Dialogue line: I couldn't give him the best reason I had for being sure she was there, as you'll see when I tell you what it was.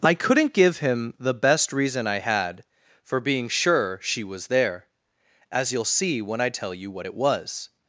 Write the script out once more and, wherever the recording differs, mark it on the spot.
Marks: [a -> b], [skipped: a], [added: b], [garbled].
I couldn't give him the best reason I had for being sure she was there, as you'll see when I tell you what it was.